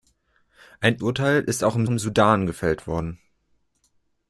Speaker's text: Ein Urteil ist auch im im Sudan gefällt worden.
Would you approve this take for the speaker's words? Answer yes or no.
yes